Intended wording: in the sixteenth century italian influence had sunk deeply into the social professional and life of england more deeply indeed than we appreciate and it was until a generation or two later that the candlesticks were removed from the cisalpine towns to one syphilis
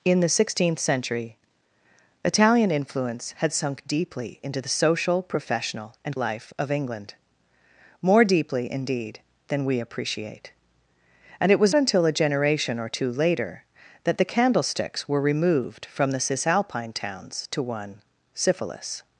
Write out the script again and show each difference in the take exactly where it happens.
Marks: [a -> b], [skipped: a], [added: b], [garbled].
in the sixteenth century italian influence had sunk deeply into the social professional and life of england more deeply indeed than we appreciate and it was until a generation or two later that the candlesticks were removed from the cisalpine towns to one syphilis